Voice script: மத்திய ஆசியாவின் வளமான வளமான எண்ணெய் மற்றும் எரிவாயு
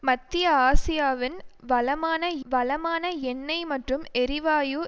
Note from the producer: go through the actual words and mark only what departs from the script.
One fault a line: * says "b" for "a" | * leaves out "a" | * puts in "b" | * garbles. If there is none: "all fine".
all fine